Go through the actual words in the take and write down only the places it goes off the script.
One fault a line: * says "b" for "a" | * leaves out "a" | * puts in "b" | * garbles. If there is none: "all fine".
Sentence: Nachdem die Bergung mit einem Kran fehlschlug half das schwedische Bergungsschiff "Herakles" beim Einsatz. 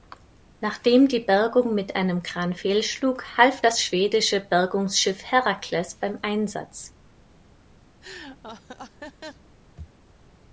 all fine